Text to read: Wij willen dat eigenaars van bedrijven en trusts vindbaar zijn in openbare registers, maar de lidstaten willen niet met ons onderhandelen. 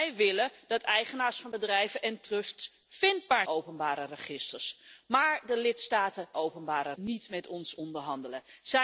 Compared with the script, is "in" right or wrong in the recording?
wrong